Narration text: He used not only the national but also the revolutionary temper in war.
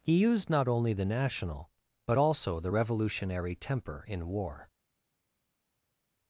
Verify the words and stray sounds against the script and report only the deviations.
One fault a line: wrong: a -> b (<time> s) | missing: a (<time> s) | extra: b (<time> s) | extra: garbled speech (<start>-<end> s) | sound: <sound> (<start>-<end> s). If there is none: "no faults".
no faults